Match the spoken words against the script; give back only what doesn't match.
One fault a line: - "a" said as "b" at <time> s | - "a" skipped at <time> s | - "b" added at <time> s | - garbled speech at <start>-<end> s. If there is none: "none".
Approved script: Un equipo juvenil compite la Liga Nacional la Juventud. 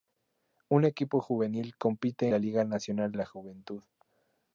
none